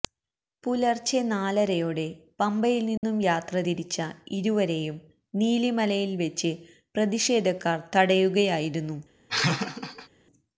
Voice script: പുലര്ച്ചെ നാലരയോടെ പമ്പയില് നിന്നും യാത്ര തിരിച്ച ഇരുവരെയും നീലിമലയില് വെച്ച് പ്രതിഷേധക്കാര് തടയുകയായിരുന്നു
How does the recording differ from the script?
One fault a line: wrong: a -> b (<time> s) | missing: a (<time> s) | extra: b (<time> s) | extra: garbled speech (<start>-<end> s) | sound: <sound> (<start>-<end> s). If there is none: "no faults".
sound: dropout (3.0-3.0 s)
sound: laugh (9.3-10.1 s)